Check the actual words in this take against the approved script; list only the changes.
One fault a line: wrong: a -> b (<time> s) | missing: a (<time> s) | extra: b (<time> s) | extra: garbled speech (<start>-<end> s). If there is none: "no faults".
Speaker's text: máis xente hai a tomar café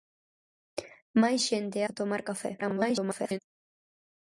missing: hai (1.8 s)
extra: garbled speech (2.6-3.4 s)